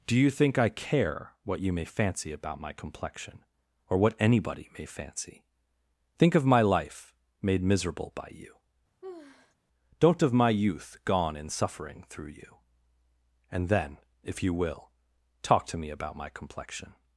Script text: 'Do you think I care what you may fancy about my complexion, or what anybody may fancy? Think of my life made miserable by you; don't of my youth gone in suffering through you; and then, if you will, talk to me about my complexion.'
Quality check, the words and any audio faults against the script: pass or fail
fail